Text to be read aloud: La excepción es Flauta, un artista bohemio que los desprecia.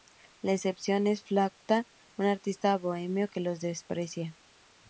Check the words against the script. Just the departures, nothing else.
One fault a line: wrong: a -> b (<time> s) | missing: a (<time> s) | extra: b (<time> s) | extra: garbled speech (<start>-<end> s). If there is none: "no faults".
no faults